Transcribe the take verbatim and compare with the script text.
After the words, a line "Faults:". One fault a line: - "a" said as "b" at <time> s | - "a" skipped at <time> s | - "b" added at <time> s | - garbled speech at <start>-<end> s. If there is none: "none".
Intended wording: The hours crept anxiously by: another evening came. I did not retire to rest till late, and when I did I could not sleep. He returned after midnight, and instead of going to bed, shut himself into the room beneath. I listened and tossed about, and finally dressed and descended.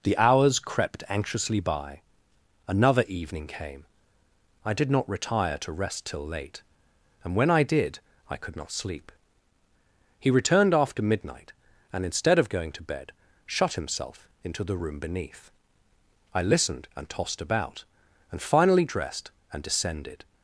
The hours crept anxiously by: another evening came. I did not retire to rest till late, and when I did I could not sleep. He returned after midnight, and instead of going to bed, shut himself into the room beneath. I listened and tossed about, and finally dressed and descended.
Faults:
none